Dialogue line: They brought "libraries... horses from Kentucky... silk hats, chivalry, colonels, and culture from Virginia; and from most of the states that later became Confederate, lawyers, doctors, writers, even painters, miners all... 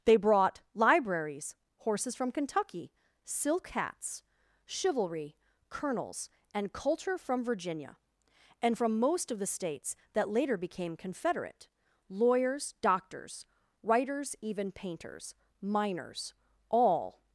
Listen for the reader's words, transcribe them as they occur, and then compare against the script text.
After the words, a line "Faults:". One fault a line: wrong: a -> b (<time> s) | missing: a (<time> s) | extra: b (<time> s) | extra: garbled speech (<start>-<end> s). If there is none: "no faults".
They brought "libraries... horses from Kentucky... silk hats, chivalry, colonels, and culture from Virginia; and from most of the states that later became Confederate, lawyers, doctors, writers, even painters, miners all...
Faults:
no faults